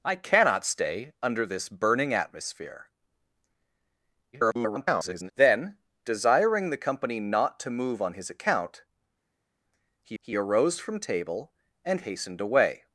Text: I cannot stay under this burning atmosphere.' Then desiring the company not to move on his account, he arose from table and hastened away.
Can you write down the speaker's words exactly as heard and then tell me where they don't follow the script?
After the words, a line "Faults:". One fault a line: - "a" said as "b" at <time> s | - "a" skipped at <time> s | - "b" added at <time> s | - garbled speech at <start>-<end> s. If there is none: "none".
I cannot stay under this burning atmosphere.' [garbled] Then desiring the company not to move on his account, he he arose from table and hastened away.
Faults:
- garbled speech at 4.3-5.3 s
- "he" added at 10.2 s